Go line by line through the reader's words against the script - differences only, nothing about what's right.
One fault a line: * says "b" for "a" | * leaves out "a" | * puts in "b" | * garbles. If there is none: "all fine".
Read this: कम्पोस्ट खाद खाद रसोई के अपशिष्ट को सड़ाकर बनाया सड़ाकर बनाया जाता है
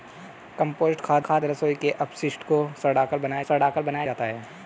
all fine